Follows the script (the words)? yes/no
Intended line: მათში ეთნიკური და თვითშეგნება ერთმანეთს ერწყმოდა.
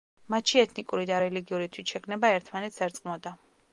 no